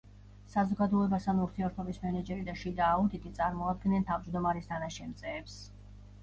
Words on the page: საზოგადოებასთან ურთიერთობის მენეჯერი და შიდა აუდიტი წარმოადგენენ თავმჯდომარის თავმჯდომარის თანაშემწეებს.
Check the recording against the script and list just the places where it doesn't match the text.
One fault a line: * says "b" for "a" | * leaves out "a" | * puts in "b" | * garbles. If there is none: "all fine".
* leaves out "თავმჯდომარის"